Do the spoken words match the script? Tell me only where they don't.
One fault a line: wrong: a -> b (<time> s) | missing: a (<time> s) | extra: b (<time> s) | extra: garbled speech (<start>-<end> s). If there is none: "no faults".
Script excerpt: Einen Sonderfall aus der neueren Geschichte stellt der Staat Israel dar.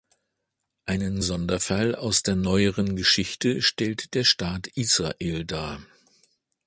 no faults